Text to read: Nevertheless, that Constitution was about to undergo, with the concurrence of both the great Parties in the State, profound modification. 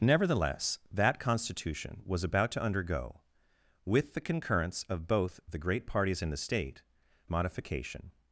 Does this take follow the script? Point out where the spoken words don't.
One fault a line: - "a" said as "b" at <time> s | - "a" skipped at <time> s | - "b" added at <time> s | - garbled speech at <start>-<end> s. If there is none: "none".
- "profound" skipped at 6.8 s